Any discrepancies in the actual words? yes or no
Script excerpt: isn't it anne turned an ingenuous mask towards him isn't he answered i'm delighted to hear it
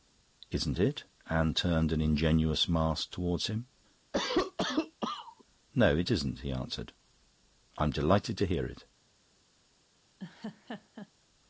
yes